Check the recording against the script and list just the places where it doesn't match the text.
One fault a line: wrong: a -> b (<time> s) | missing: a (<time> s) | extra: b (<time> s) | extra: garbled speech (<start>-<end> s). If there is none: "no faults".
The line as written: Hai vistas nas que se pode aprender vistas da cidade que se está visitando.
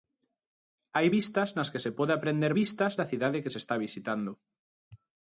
no faults